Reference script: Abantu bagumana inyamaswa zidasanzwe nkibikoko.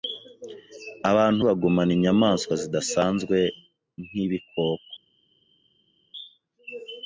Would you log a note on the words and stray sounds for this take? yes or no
no